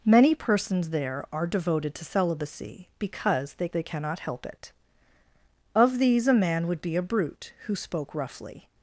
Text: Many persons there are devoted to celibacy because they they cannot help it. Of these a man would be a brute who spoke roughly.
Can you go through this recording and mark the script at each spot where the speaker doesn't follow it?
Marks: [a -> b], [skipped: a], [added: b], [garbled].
Many persons there are devoted to celibacy because they they cannot help it. Of these a man would be a brute who spoke roughly.